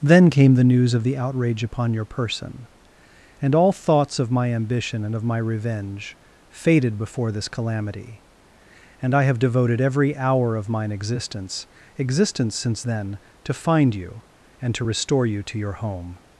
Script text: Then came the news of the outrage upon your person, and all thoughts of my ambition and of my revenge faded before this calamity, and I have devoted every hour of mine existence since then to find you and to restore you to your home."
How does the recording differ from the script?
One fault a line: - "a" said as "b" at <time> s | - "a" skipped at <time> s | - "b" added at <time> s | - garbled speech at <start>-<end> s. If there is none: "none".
- "existence" added at 12.0 s